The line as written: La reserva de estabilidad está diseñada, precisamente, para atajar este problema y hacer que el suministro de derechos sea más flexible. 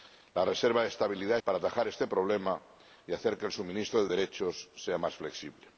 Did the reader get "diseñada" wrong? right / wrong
wrong